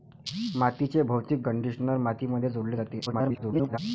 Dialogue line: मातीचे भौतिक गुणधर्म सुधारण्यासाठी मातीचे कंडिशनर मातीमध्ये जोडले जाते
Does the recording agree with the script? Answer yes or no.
no